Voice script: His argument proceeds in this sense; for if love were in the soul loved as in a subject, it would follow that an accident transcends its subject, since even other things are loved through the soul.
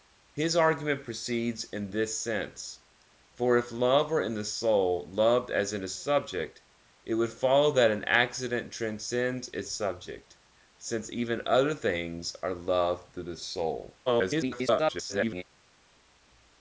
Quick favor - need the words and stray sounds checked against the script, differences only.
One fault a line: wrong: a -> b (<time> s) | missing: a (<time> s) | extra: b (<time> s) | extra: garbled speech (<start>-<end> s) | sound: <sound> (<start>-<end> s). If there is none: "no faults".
extra: garbled speech (14.1-15.4 s)